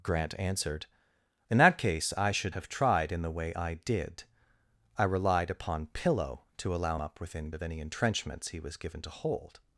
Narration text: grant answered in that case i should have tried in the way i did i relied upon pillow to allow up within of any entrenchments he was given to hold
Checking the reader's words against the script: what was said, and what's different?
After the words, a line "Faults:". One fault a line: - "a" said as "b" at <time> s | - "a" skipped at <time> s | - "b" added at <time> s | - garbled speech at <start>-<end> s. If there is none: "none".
grant answered in that case i should have tried in the way i did i relied upon pillow to allow up within of any entrenchments he was given to hold
Faults:
none